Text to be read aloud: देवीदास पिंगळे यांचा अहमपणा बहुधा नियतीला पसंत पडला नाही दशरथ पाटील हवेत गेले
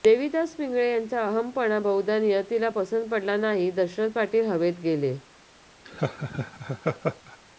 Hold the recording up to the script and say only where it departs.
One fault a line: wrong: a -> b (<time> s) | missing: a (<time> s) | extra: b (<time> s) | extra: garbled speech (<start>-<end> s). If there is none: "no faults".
no faults